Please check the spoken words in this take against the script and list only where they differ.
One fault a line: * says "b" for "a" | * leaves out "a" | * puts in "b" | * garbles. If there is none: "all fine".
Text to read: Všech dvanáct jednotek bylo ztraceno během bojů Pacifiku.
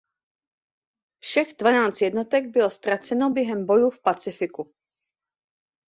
* puts in "v"